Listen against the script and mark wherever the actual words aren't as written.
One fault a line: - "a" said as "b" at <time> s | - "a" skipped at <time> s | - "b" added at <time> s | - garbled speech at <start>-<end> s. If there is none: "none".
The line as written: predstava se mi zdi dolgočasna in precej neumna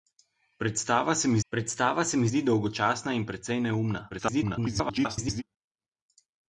- "predstava se mi" added at 1.5 s
- garbled speech at 4.1-5.4 s